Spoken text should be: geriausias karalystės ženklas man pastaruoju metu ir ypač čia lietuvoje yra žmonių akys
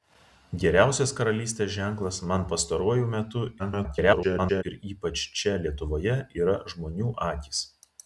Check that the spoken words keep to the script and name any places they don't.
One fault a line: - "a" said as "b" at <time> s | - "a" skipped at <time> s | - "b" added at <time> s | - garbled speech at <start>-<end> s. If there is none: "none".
- garbled speech at 3.6-4.6 s